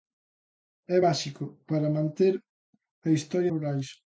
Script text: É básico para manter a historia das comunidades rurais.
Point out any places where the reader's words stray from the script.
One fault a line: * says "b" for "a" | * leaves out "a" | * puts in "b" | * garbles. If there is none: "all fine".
* leaves out "das comunidades"